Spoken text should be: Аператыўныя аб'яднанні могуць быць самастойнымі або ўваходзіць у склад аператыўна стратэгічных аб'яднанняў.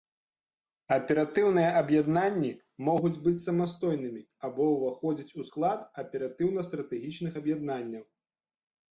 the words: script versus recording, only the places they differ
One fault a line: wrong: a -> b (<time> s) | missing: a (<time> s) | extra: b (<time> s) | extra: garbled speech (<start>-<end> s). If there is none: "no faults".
no faults